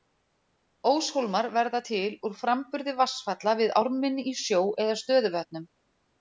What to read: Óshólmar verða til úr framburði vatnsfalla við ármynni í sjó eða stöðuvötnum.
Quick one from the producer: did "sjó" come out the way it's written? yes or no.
yes